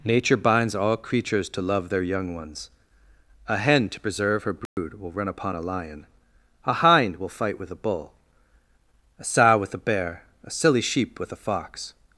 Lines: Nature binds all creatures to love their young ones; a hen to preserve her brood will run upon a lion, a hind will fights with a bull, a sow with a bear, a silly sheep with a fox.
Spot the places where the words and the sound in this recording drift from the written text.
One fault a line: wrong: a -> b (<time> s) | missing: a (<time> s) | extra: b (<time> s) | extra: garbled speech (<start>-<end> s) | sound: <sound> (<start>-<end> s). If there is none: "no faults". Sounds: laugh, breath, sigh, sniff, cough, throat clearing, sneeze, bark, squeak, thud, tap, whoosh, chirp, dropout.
sound: dropout (4.7-4.8 s)
wrong: fights -> fight (7.3 s)